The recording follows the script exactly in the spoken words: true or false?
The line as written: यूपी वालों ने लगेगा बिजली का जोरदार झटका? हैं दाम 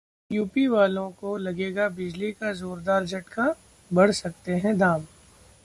false